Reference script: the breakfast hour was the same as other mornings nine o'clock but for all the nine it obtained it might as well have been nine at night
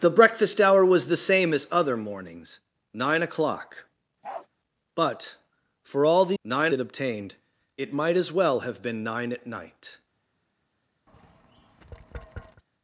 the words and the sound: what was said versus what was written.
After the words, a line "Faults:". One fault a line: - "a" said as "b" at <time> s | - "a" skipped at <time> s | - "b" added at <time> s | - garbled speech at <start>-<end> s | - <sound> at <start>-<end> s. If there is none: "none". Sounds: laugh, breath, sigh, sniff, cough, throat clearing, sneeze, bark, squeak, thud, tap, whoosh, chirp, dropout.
the breakfast hour was the same as other mornings nine o'clock but for all the nine it obtained it might as well have been nine at night
Faults:
- bark at 4.2-4.5 s
- tap at 11.1-12.6 s